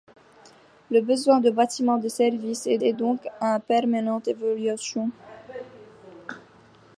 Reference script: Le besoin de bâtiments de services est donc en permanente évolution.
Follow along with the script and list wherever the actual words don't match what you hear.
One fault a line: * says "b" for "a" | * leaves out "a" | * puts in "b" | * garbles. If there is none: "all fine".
* puts in "est"